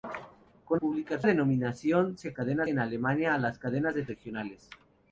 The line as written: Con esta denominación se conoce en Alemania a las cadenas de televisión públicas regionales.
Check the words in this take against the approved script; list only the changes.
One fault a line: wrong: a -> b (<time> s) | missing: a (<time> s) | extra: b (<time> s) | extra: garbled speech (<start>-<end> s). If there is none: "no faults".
wrong: esta -> públicas (0.7 s)
wrong: conoce -> cadenas (2.3 s)
missing: televisión públicas (4.1 s)